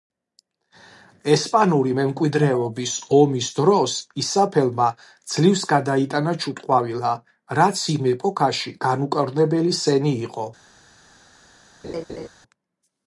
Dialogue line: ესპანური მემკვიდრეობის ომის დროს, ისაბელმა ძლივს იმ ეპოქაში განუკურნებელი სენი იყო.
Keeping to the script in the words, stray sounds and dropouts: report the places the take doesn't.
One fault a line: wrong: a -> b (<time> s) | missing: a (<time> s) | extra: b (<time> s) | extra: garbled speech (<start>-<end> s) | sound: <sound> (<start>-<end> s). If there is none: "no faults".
extra: გადაიტანა ჩუტყვავილა რაც (5.7 s)
sound: laugh (11.8-12.3 s)